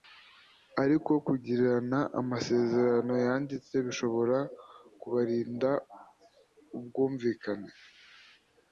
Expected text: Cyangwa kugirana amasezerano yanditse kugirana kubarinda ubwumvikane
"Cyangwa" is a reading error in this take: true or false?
true